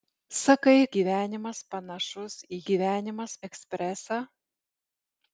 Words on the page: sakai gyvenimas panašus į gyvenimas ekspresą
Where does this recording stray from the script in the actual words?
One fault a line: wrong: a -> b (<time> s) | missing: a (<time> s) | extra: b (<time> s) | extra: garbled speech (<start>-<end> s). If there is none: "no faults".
no faults